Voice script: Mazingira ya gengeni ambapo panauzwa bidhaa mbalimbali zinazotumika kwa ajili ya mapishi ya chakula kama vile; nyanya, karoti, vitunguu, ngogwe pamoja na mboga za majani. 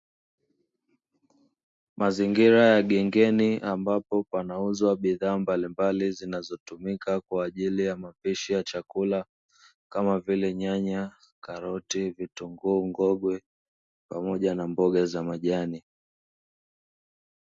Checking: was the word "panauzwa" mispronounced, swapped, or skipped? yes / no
no